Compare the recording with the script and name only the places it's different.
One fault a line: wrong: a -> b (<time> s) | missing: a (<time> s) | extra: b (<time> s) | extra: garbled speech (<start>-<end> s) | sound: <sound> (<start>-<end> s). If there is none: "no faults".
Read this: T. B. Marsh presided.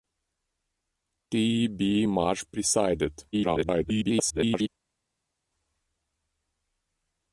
extra: garbled speech (3.3-4.7 s)